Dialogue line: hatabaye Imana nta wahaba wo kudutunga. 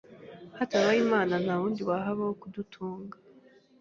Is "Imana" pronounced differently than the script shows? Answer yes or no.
no